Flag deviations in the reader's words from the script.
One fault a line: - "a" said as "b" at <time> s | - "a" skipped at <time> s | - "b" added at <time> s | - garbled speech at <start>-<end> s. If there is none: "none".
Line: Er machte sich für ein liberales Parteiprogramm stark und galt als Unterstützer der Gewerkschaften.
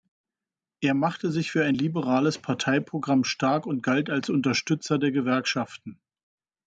none